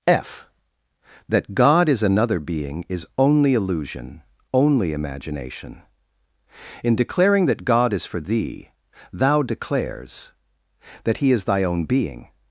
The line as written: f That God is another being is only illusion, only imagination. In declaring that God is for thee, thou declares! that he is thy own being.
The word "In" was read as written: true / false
true